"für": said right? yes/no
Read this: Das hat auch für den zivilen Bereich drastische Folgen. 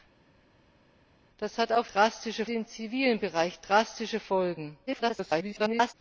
no